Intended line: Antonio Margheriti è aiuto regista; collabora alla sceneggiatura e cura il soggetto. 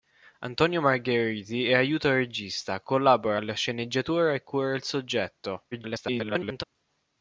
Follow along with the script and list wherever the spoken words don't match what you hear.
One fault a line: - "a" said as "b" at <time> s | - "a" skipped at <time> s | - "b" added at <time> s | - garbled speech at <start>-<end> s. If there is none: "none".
- garbled speech at 5.7-6.6 s